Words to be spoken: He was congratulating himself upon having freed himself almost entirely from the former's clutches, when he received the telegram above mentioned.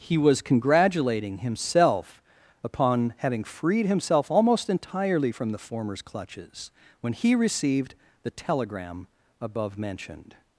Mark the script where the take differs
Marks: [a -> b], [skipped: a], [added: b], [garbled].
He was congratulating himself upon having freed himself almost entirely from the former's clutches, when he received the telegram above mentioned.